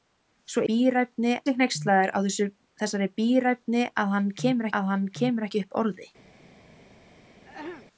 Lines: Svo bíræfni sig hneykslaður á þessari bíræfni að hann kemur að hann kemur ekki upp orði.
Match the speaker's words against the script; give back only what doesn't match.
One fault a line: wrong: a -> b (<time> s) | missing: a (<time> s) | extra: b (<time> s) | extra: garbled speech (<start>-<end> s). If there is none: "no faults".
no faults